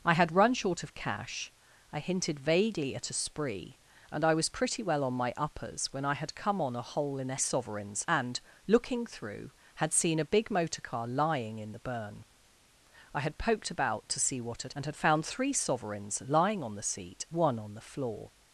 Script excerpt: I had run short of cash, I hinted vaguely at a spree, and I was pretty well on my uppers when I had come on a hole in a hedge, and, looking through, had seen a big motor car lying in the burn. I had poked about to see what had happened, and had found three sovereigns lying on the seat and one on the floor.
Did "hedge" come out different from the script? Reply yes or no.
yes